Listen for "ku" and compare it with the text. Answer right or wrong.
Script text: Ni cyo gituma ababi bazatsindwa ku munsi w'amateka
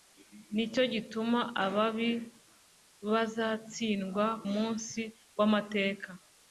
wrong